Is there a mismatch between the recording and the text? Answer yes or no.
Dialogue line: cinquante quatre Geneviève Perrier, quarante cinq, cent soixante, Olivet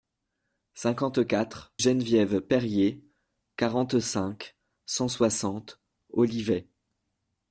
no